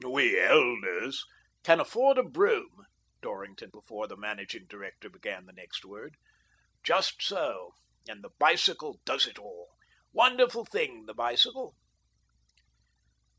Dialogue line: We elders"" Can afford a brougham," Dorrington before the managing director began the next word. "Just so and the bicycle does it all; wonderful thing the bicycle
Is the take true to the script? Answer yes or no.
yes